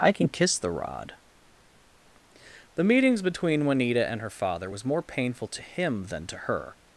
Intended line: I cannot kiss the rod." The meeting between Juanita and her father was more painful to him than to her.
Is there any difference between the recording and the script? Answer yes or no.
yes